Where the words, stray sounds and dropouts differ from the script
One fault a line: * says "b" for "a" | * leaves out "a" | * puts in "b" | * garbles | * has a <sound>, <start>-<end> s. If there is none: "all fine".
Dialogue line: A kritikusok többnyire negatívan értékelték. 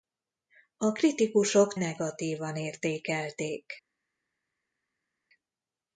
* leaves out "többnyire"